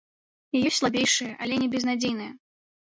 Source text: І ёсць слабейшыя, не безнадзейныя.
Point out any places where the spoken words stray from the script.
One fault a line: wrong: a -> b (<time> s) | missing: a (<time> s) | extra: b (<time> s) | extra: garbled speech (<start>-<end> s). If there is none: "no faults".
extra: але (1.4 s)